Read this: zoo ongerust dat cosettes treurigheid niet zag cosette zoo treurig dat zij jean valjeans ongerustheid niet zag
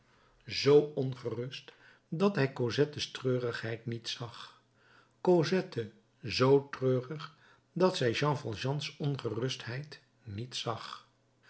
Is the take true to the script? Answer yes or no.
no